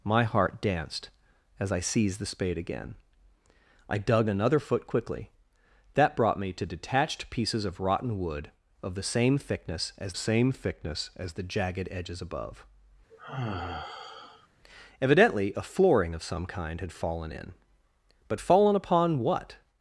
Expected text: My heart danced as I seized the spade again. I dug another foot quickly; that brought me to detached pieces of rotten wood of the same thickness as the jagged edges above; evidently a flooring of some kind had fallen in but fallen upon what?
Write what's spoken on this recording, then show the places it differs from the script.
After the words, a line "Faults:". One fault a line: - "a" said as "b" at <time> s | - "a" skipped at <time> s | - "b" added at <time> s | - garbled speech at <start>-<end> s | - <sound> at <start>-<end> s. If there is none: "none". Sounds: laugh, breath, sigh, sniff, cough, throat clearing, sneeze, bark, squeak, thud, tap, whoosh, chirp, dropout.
My heart danced as I seized the spade again. I dug another foot quickly; that brought me to detached pieces of rotten wood of the same thickness as same thickness as the jagged edges above; evidently a flooring of some kind had fallen in but fallen upon what?
Faults:
- "same thickness as" added at 10.1 s
- sigh at 13.1-14.5 s